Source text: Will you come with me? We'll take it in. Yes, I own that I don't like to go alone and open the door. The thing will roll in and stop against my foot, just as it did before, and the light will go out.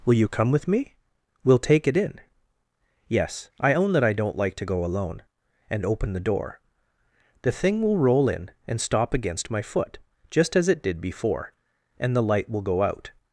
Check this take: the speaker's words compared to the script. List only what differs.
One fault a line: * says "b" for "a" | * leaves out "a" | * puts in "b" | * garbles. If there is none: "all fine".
all fine